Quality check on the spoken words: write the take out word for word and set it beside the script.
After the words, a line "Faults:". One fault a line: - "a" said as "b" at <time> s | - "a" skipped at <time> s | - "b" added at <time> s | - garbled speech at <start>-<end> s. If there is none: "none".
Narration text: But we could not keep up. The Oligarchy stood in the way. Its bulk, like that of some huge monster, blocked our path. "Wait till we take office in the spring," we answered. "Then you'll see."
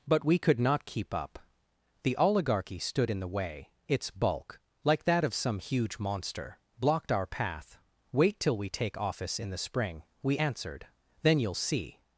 But we could not keep up. The Oligarchy stood in the way. Its bulk, like that of some huge monster, blocked our path. "Wait till we take office in the spring," we answered. "Then you'll see."
Faults:
none